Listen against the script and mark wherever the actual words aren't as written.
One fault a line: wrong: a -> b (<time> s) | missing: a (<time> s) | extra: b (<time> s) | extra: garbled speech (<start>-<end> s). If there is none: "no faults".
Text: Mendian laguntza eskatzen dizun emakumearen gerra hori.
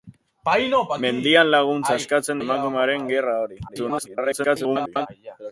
missing: dizun (2.4 s)
extra: garbled speech (3.7-5.1 s)